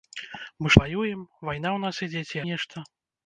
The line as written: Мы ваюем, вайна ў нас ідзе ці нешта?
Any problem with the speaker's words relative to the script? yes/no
no